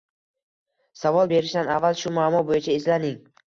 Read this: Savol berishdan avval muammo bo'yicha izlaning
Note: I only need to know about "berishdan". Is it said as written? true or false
true